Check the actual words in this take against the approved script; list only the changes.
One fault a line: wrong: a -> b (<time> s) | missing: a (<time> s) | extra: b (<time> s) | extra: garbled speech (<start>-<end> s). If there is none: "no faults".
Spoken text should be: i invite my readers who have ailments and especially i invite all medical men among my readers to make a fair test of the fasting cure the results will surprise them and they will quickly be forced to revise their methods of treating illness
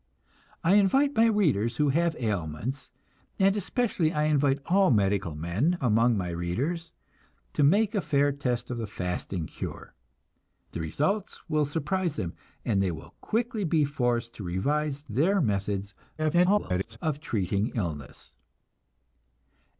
extra: garbled speech (16.2-17.0 s)